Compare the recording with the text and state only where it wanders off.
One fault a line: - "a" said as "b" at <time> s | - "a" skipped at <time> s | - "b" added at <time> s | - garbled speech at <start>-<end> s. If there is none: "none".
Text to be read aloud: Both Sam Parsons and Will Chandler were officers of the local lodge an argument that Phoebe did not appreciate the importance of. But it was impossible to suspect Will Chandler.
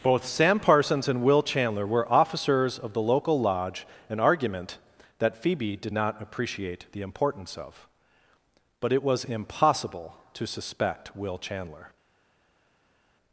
none